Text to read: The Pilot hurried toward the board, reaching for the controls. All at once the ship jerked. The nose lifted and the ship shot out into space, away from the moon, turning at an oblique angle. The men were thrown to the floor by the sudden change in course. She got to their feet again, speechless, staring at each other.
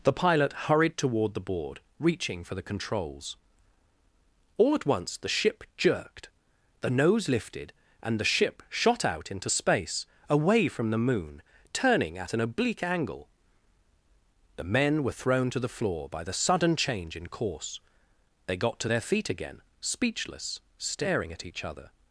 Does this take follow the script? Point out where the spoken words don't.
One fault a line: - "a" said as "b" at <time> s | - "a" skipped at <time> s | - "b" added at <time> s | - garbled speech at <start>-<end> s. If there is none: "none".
- "She" said as "They" at 18.5 s